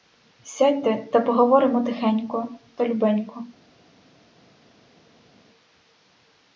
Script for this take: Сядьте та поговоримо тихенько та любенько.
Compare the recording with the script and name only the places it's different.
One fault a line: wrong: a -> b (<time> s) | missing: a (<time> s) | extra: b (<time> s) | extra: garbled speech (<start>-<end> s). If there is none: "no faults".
no faults